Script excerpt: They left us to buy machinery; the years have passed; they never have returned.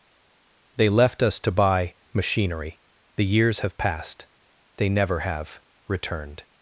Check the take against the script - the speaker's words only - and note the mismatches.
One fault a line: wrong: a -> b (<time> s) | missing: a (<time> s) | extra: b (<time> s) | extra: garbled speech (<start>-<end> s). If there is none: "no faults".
no faults